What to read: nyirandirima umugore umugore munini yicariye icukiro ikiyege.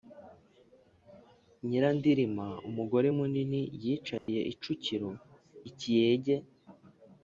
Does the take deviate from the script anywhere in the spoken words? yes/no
yes